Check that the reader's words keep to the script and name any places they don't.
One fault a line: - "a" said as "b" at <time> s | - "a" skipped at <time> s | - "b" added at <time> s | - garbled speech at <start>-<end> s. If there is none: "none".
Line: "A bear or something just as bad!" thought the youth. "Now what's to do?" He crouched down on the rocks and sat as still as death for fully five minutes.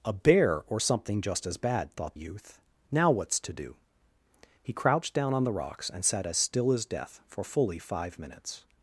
- "the" skipped at 2.2 s